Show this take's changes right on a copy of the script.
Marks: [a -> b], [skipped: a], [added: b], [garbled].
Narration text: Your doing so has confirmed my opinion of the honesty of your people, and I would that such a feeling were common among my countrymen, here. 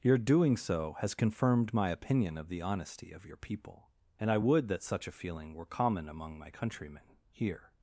Your doing so has confirmed my opinion of the honesty of your people, and I would that such a feeling were common among my countrymen, here.